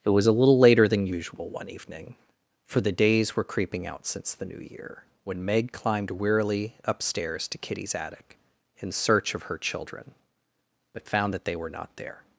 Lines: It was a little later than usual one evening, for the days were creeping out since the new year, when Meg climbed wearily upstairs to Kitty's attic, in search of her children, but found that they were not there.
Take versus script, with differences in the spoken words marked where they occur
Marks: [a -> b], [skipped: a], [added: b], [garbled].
It was a little later than usual one evening, for the days were creeping out since the new year, when Meg climbed wearily upstairs to Kitty's attic, in search of her children, but found that they were not there.